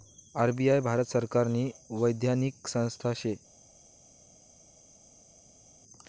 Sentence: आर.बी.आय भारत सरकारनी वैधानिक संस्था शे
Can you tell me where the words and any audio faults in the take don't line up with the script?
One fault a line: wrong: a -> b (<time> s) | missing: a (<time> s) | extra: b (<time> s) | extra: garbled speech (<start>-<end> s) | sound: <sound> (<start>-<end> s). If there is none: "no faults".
no faults